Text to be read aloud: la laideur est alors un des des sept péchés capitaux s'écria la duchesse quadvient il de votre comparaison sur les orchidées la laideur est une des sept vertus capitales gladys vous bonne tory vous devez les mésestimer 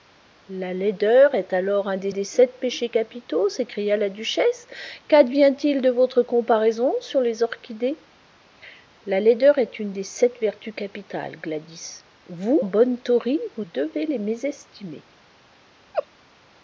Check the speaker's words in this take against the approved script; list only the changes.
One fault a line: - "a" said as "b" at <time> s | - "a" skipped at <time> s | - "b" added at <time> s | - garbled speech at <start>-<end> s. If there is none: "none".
none